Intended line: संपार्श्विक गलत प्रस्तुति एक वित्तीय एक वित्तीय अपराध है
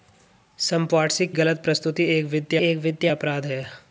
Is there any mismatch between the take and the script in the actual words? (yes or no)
no